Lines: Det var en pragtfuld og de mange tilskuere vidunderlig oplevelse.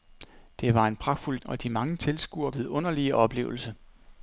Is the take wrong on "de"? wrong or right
right